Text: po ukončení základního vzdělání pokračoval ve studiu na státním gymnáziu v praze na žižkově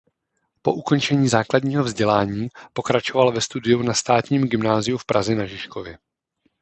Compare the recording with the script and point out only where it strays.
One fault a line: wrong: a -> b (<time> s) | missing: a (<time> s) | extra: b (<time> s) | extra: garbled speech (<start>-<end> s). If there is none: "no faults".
no faults